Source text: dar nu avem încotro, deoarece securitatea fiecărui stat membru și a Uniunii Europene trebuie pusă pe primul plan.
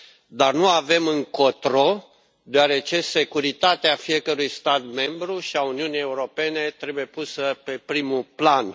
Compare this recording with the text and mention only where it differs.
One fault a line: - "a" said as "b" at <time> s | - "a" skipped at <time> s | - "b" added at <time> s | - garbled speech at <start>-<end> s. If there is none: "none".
none